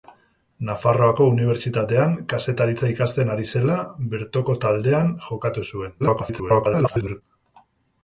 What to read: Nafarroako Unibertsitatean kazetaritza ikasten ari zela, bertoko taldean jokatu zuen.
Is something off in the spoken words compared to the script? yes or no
yes